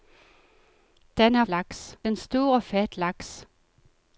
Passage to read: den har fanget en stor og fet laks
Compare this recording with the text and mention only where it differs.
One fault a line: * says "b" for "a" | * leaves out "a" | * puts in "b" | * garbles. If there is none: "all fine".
* says "laks" for "fanget"